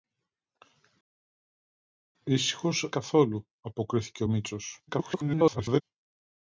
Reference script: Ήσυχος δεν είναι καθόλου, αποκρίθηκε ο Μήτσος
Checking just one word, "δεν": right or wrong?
wrong